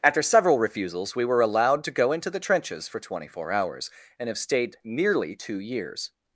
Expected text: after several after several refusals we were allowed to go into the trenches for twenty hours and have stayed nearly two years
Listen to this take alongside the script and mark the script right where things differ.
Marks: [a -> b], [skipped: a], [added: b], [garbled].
after several [skipped: after several] refusals we were allowed to go into the trenches for twenty [added: four] hours and have stayed nearly two years